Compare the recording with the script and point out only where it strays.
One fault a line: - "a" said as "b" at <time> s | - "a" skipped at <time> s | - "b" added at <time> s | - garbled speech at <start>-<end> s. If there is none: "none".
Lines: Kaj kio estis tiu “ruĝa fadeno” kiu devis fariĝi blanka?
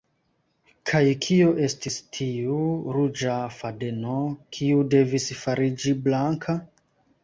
none